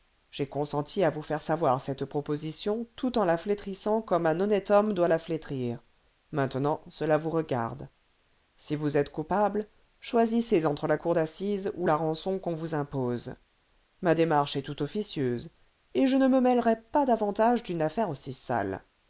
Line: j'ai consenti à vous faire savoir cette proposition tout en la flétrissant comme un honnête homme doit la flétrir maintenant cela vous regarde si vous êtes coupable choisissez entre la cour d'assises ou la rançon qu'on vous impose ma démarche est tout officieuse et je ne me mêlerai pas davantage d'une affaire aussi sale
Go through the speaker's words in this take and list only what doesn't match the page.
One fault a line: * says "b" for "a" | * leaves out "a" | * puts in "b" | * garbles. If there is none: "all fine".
all fine